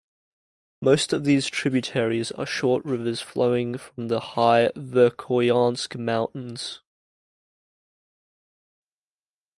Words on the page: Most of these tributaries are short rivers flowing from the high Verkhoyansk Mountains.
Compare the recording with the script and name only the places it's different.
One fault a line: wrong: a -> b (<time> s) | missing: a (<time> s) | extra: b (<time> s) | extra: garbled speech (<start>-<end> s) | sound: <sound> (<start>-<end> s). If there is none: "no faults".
no faults